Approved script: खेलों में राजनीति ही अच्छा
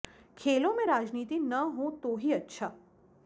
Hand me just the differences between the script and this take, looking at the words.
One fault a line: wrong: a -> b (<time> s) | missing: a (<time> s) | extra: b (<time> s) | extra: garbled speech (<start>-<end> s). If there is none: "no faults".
extra: न हो तो (1.4 s)